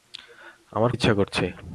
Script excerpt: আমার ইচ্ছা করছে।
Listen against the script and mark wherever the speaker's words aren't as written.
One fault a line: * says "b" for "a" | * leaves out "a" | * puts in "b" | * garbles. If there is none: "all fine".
all fine